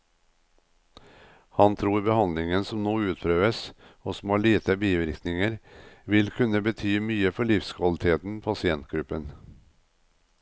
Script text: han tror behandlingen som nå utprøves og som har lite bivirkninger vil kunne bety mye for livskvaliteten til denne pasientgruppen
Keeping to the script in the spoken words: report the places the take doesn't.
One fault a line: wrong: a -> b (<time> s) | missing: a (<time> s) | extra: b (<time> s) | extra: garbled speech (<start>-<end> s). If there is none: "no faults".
missing: til denne (8.4 s)